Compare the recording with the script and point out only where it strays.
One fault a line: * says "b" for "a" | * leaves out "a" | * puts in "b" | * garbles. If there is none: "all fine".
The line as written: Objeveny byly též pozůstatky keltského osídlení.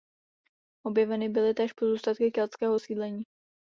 all fine